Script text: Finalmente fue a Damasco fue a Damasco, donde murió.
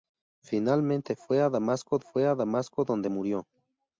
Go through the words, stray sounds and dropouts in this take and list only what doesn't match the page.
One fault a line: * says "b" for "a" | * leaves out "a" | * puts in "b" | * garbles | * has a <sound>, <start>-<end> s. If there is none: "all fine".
all fine